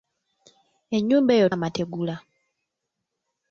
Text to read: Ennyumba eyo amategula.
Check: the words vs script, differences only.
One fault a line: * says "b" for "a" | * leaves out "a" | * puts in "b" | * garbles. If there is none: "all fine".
all fine